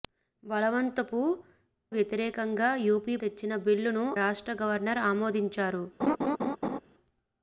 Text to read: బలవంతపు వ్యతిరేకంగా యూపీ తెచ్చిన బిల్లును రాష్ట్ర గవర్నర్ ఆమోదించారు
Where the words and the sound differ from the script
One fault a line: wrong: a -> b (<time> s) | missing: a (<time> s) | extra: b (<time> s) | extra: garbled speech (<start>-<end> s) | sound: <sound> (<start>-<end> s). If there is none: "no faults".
sound: laugh (6.0-6.8 s)